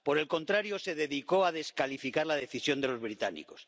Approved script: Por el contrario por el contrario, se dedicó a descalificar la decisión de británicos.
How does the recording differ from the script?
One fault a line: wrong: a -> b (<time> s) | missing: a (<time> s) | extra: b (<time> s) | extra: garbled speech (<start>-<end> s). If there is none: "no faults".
missing: por el contrario (0.8 s)
extra: los (2.9 s)